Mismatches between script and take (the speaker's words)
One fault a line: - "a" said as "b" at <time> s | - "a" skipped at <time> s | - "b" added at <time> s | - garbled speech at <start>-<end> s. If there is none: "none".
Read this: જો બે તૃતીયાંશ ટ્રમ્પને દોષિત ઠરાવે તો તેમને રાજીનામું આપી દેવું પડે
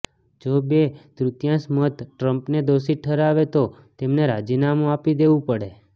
- "મત" added at 1.8 s